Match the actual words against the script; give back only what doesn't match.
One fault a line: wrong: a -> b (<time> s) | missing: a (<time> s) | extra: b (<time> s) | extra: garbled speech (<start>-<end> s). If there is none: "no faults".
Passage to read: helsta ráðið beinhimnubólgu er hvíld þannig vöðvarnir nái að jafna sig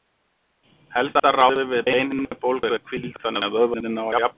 extra: við (1.7 s)
extra: að (3.5 s)